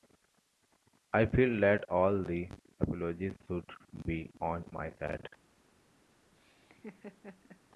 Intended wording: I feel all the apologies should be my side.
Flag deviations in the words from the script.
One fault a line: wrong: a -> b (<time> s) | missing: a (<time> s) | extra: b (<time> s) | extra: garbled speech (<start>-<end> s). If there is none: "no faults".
extra: that (1.6 s)
extra: on (4.4 s)